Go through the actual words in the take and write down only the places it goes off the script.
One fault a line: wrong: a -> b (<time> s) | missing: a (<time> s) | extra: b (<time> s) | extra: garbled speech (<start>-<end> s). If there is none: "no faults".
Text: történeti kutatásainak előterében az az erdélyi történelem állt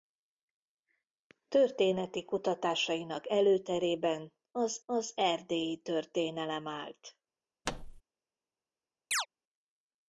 no faults